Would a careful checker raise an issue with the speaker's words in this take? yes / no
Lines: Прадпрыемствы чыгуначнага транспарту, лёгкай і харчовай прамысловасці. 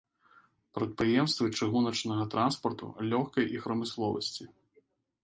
yes